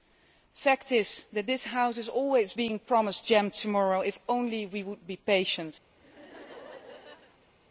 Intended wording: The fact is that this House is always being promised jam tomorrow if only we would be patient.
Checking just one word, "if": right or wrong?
right